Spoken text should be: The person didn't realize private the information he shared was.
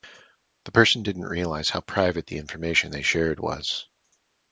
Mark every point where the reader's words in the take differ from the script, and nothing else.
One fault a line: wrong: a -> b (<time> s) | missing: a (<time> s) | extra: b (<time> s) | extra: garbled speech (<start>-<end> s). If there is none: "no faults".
extra: how (1.7 s)
wrong: he -> they (2.9 s)